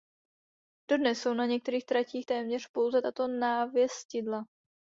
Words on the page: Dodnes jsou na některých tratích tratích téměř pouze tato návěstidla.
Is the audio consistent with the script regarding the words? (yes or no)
no